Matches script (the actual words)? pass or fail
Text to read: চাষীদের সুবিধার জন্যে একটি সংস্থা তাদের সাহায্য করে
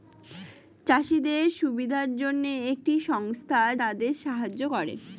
pass